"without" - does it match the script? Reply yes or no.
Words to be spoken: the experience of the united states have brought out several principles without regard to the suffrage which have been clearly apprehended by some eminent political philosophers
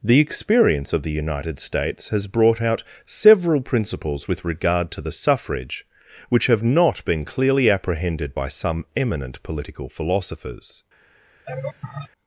no